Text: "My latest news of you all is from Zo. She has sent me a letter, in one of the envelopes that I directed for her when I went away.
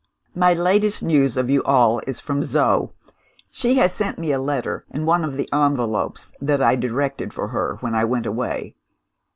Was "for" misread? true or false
false